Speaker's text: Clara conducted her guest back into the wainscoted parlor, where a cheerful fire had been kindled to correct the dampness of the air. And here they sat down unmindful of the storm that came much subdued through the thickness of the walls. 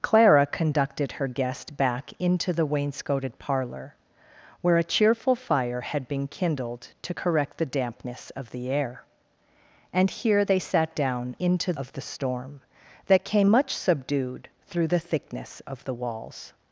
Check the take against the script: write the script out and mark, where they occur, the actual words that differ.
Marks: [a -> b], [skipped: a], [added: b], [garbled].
Clara conducted her guest back into the wainscoted parlor, where a cheerful fire had been kindled to correct the dampness of the air. And here they sat down [unmindful -> into] of the storm that came much subdued through the thickness of the walls.